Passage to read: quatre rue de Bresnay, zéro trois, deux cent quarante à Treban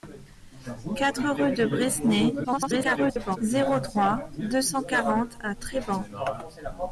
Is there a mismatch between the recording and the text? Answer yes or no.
yes